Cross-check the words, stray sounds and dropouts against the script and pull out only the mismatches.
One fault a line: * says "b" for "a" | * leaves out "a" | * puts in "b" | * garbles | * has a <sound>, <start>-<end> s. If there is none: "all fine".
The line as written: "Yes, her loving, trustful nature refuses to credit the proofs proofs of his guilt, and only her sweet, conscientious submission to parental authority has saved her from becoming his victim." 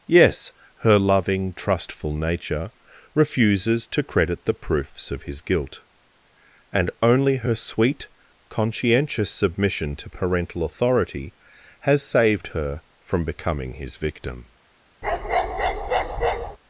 * leaves out "proofs"
* has a bark, 15.0-16.6 s